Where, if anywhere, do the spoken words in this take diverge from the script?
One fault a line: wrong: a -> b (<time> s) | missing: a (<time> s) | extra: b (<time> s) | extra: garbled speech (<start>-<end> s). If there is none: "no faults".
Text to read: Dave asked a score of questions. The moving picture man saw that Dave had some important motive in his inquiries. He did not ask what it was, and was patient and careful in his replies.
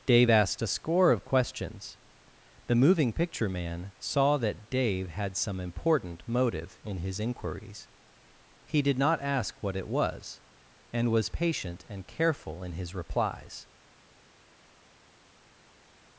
no faults